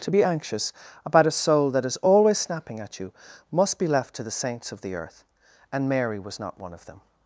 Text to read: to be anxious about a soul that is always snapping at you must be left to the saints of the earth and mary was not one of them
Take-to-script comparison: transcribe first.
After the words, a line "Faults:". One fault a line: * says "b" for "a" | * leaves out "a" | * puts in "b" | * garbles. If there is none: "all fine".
to be anxious about a soul that is always snapping at you must be left to the saints of the earth and mary was not one of them
Faults:
all fine